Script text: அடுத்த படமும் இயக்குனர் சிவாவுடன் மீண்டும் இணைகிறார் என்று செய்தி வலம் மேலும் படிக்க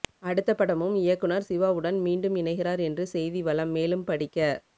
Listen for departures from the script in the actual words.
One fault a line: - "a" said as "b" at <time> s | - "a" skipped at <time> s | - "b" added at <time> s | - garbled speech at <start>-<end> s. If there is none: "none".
none